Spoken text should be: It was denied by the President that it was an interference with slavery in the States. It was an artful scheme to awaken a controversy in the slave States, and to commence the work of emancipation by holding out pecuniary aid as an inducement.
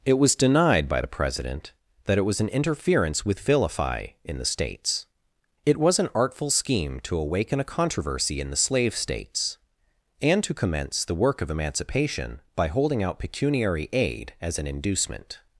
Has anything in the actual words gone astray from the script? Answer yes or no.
yes